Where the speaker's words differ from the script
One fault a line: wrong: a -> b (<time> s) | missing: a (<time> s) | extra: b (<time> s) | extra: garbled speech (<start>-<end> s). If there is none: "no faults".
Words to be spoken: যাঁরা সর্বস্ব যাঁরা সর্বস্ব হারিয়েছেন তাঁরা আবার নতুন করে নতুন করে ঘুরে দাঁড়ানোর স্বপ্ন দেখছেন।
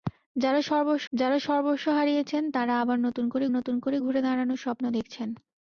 no faults